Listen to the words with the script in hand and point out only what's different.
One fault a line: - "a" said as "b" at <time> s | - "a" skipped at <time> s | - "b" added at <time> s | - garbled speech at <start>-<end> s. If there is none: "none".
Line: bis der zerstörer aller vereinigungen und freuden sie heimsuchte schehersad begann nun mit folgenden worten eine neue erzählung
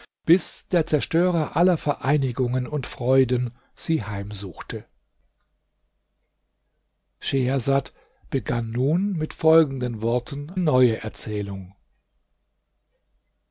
- "eine" skipped at 10.5 s